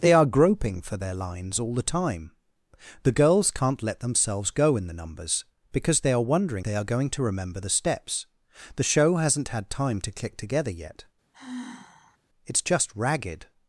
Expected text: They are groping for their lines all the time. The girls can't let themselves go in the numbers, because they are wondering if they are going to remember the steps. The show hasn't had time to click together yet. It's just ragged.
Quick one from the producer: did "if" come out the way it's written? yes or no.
no